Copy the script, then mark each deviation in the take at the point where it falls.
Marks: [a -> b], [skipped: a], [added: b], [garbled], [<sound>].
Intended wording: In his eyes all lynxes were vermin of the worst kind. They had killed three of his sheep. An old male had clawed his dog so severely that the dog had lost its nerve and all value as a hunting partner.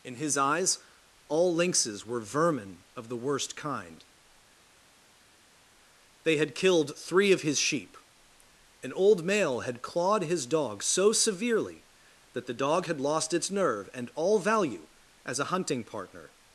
In his eyes all lynxes were vermin of the worst kind. They had killed three of his sheep. An old male had clawed his dog so severely that the dog had lost its nerve and all value as a hunting partner.